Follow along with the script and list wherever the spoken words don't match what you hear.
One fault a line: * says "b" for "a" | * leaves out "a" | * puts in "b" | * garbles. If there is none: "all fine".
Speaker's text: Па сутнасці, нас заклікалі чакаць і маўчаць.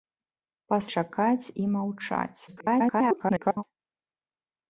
* leaves out "сутнасці нас заклікалі"
* garbles